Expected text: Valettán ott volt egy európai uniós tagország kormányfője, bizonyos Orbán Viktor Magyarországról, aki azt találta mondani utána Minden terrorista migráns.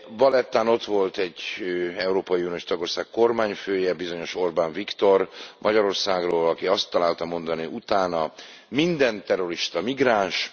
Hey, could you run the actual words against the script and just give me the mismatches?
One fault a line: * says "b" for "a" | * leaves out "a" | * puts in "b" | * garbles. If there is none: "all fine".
all fine